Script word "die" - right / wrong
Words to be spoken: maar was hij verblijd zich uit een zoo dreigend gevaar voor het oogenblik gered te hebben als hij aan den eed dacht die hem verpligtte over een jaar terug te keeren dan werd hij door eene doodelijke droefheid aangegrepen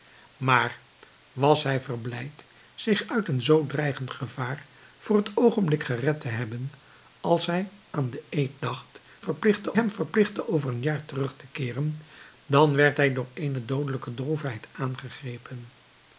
wrong